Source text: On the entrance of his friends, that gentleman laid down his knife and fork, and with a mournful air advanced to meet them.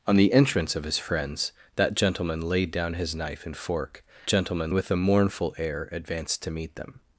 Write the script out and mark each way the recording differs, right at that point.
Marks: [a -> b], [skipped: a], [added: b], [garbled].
On the entrance of his friends, that gentleman laid down his knife and fork, [and -> gentleman] with a mournful air advanced to meet them.